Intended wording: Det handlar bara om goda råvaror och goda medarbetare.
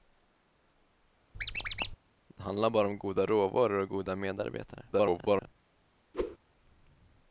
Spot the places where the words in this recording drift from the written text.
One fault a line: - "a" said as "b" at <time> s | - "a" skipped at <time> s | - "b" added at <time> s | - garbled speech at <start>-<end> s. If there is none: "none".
- garbled speech at 4.9-5.5 s